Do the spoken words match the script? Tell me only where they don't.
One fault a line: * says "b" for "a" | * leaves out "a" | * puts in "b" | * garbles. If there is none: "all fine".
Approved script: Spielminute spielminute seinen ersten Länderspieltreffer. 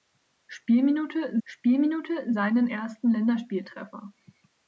all fine